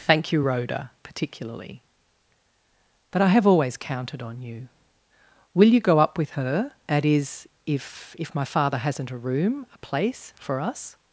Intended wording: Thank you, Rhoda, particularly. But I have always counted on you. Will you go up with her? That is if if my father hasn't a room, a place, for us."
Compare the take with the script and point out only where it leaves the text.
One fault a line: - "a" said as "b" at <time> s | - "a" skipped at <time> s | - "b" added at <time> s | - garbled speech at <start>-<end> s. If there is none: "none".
none